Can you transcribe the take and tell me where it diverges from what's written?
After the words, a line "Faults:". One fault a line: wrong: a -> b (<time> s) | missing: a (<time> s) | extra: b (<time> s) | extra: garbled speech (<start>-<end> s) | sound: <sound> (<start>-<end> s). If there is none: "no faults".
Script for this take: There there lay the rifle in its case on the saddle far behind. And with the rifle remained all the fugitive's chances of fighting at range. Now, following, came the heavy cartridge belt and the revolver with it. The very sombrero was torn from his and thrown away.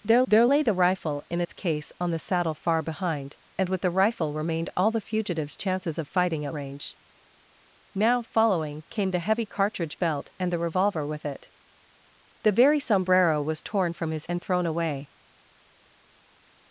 There there lay the rifle in its case on the saddle far behind. And with the rifle remained all the fugitive's chances of fighting at range. Now, following, came the heavy cartridge belt and the revolver with it. The very sombrero was torn from his and thrown away.
Faults:
no faults